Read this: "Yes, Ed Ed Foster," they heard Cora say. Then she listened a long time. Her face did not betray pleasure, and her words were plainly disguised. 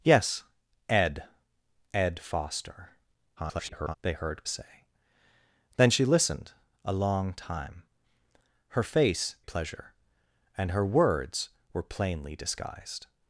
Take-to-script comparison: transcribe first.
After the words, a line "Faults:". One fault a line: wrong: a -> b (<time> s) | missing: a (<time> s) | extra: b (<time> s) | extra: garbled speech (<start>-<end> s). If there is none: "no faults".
"Yes, Ed Ed Foster," [garbled] they heard Say. Then she listened a long time. Her face pleasure, and her words were plainly disguised.
Faults:
extra: garbled speech (3.4-4.0 s)
missing: Cora (4.4 s)
missing: did not betray (9.4 s)